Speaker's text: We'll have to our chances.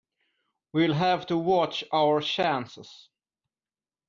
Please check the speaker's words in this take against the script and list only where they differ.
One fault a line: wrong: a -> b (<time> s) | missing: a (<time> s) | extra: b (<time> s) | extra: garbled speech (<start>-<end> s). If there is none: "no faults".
extra: watch (1.4 s)